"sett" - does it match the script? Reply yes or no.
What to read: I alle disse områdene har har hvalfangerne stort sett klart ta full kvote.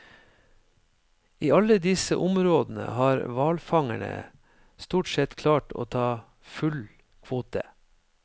yes